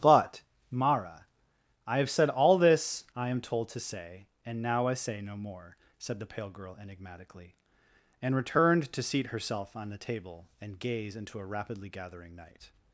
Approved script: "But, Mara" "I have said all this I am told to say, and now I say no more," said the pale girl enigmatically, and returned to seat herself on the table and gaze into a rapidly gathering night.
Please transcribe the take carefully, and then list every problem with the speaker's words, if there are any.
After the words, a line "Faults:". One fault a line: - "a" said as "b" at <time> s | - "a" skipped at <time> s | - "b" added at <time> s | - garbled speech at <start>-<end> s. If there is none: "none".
"But, Mara" "I have said all this I am told to say, and now I say no more," said the pale girl enigmatically, and returned to seat herself on the table and gaze into a rapidly gathering night.
Faults:
none